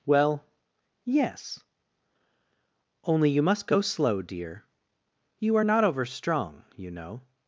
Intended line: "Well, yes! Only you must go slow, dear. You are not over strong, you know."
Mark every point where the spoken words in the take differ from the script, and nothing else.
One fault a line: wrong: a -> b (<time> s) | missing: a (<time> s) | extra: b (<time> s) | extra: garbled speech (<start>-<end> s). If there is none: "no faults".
no faults